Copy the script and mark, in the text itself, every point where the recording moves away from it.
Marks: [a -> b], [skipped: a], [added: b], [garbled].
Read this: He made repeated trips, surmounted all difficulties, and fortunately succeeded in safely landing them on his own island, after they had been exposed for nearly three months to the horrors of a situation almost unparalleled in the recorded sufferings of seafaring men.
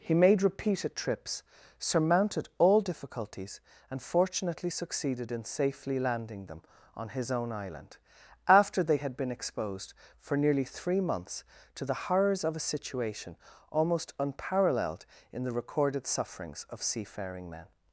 He made repeated trips, surmounted all difficulties, and fortunately succeeded in safely landing them on his own island, after they had been exposed for nearly three months to the horrors of a situation almost unparalleled in the recorded sufferings of seafaring men.